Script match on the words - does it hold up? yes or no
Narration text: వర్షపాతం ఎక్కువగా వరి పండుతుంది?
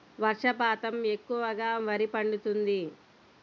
yes